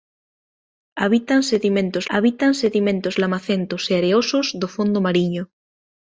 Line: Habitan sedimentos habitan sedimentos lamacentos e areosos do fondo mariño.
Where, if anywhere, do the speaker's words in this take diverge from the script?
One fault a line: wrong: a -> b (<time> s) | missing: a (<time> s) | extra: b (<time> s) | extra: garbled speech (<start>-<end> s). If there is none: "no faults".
no faults